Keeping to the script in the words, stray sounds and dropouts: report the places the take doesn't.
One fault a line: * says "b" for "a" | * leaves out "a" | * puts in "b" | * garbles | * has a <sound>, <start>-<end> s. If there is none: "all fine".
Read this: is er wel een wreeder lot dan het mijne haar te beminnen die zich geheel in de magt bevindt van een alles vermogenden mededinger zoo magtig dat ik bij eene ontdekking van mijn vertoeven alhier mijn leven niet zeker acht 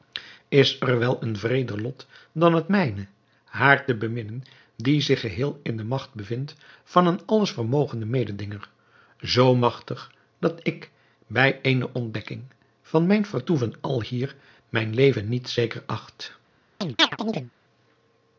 * has a chirp, 16.8-17.5 s